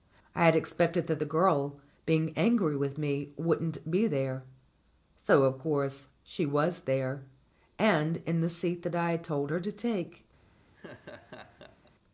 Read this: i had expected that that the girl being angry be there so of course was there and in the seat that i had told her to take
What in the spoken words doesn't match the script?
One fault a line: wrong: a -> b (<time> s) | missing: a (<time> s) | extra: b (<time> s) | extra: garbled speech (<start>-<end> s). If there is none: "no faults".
missing: that (1.2 s)
extra: with me wouldn't (2.7 s)
extra: she (6.2 s)